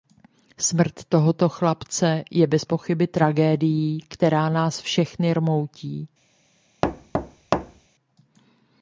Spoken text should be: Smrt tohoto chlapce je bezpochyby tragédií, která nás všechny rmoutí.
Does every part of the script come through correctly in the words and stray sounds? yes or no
no